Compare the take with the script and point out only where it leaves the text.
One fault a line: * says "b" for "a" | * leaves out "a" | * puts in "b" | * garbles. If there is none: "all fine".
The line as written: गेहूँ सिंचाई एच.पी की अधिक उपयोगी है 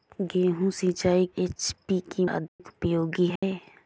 all fine